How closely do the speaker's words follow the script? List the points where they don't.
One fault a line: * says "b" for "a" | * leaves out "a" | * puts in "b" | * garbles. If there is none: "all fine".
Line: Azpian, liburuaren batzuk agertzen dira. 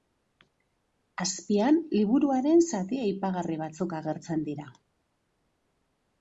* puts in "zati aipagarri"